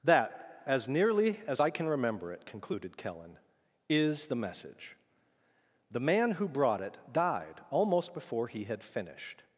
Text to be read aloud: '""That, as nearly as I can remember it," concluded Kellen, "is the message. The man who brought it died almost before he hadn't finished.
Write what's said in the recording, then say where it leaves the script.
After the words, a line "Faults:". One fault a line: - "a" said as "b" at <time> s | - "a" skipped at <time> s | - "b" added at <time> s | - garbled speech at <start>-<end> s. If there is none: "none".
'""That, as nearly as I can remember it," concluded Kellen, "is the message. The man who brought it died almost before he had finished.
Faults:
- "hadn't" said as "had" at 8.6 s